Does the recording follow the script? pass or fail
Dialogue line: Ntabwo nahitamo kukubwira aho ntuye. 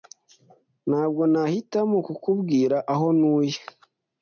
pass